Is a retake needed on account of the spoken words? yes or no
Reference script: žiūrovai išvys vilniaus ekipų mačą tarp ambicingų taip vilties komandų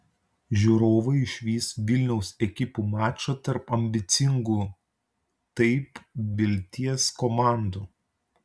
no